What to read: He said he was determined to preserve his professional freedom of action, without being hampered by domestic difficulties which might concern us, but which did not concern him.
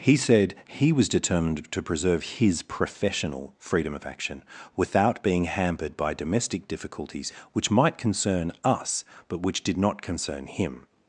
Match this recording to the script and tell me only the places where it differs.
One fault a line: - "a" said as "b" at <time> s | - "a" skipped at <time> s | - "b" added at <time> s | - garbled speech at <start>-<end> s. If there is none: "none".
none